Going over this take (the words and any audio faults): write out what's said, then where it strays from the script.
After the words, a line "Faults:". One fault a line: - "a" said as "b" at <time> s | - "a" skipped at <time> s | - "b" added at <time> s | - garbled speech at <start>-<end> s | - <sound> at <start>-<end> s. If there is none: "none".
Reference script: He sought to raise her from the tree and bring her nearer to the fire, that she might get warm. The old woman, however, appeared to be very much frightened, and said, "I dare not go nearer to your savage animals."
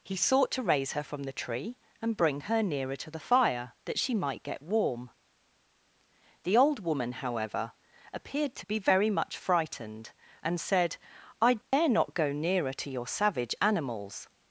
He sought to raise her from the tree and bring her nearer to the fire, that she might get warm. The old woman, however, appeared to be very much frightened, and said, "I dare not go nearer to your savage animals."
Faults:
- dropout at 11.6-11.7 s